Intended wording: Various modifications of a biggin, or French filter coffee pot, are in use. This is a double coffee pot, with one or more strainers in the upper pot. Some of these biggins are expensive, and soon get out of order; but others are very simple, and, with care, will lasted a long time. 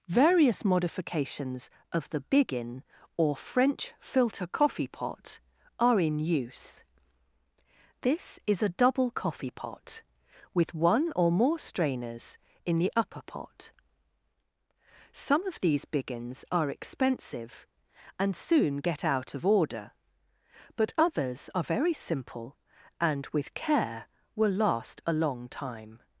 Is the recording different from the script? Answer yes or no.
yes